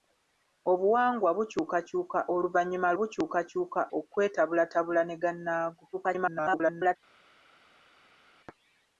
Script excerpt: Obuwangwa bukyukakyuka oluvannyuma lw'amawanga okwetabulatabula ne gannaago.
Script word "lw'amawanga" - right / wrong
wrong